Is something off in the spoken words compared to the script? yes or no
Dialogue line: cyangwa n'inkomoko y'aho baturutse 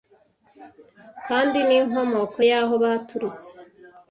yes